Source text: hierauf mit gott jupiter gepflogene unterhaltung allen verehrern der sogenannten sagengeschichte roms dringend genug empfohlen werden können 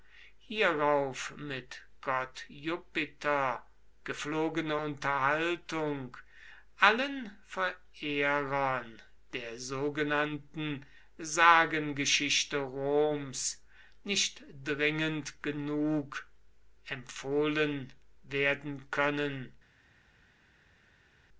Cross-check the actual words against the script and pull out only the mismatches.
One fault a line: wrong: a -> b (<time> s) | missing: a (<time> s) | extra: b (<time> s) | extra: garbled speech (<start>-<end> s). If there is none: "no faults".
extra: nicht (14.0 s)